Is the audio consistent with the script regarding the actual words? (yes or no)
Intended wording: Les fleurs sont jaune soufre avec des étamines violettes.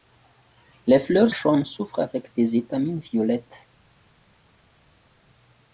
no